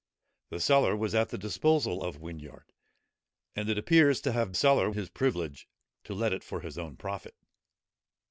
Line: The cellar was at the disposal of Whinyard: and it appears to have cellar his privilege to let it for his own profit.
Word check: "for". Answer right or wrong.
right